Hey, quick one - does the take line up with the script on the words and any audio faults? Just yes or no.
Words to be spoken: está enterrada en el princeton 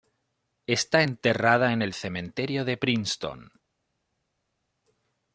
no